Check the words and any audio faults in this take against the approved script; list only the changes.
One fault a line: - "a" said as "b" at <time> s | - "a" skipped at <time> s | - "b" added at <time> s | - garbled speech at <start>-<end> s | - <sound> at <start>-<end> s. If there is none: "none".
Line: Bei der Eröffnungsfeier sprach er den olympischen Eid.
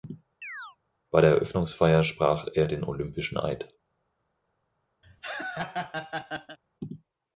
- chirp at 0.4-0.8 s
- laugh at 5.0-6.6 s